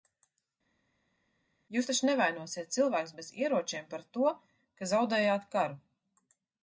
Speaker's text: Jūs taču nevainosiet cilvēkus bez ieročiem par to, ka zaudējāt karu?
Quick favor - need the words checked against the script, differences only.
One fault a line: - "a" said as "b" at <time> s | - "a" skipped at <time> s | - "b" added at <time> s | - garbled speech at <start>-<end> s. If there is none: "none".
none